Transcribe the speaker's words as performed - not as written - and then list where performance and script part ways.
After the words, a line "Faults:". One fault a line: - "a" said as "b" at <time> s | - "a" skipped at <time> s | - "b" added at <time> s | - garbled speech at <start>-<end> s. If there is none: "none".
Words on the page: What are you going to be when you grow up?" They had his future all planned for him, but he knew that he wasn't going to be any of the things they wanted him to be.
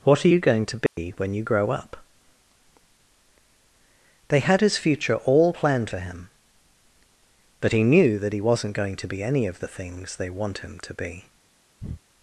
What are you going to be when you grow up?" They had his future all planned for him, but he knew that he wasn't going to be any of the things they want him to be.
Faults:
- "wanted" said as "want" at 10.3 s